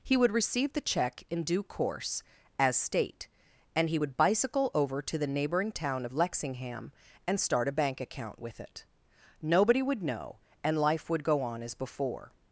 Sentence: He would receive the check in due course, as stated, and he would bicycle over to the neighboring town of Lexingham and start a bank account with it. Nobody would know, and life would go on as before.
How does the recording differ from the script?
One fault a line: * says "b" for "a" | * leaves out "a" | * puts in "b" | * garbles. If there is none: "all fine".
* says "state" for "stated"